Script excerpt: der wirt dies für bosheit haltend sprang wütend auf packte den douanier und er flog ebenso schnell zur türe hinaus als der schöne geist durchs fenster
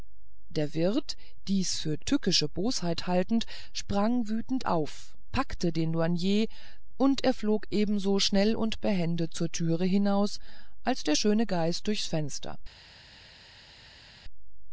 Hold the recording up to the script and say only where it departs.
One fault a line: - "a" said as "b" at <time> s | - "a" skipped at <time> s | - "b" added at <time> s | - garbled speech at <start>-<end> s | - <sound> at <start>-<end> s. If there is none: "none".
- "tückische" added at 2.0 s
- "und behende" added at 8.5 s